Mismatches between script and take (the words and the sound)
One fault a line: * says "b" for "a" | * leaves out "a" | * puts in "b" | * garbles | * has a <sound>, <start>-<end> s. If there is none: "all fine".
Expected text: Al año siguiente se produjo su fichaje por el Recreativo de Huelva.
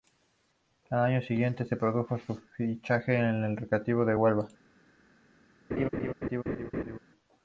* has a laugh, 5.7-7.0 s